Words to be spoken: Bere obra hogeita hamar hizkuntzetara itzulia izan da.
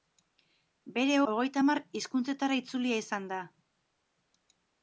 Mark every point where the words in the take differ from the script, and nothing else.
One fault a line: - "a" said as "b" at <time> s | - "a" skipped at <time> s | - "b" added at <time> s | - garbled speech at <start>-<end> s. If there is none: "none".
- "obra" skipped at 1.2 s